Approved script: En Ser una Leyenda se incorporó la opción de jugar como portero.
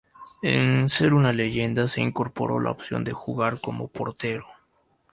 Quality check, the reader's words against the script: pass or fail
pass